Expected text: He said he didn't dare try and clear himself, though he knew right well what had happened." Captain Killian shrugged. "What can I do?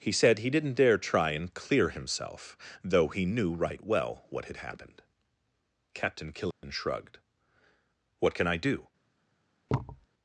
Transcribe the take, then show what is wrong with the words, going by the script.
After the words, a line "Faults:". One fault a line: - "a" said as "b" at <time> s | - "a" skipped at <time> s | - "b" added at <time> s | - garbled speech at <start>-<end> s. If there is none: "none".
He said he didn't dare try and clear himself, though he knew right well what had happened." Captain Killian shrugged. "What can I do?
Faults:
none